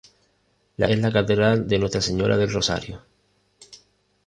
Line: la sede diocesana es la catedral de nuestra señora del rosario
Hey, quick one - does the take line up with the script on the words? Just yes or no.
no